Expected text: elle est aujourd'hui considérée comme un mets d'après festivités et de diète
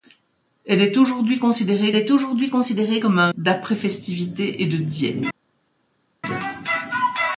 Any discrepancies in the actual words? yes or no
yes